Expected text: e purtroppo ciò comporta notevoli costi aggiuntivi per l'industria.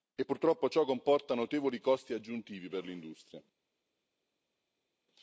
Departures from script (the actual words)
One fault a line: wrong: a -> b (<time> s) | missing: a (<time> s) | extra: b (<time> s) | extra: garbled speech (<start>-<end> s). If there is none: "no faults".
no faults